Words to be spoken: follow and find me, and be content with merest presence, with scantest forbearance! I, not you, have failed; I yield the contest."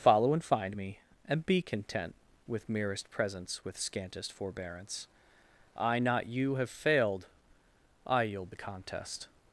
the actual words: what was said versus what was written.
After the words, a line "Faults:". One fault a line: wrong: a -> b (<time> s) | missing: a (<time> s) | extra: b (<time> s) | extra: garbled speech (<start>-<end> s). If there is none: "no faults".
follow and find me, and be content with merest presence, with scantest forbearance! I, not you, have failed; I yield the contest."
Faults:
no faults